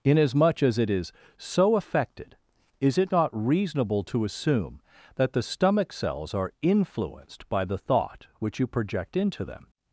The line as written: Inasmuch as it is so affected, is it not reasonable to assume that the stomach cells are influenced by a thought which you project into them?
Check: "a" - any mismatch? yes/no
yes